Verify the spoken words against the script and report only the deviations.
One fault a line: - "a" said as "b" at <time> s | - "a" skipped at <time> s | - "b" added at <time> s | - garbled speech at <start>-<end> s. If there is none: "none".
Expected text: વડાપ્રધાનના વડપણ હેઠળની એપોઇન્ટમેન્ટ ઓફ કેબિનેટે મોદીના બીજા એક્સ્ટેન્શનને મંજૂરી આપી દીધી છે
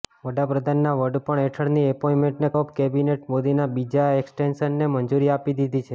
none